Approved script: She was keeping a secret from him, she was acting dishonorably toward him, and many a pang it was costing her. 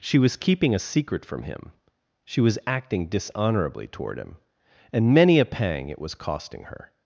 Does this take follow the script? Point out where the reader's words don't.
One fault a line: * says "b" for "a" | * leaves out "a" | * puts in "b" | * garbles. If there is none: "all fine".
all fine